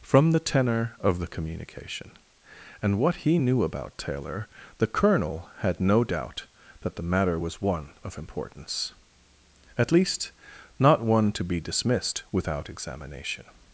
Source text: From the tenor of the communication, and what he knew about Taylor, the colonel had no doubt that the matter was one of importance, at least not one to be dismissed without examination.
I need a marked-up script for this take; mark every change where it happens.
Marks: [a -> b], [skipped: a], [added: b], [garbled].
From the tenor of the communication, and what he knew about Taylor, the colonel had no doubt that the matter was one of importance, at least not one to be dismissed without examination.